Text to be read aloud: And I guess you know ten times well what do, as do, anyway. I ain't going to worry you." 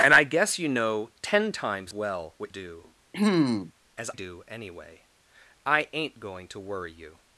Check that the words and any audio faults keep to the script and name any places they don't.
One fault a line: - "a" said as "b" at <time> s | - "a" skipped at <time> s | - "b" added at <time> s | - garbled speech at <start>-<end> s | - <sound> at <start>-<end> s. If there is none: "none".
- throat clearing at 3.1-3.7 s